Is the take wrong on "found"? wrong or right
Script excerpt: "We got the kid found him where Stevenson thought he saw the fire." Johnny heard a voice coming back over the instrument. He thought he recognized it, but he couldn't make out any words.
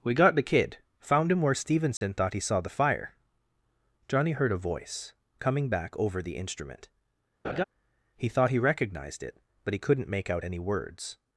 right